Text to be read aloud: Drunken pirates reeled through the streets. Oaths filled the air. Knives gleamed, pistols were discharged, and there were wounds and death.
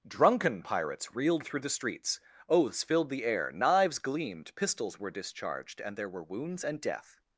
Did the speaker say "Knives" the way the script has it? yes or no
yes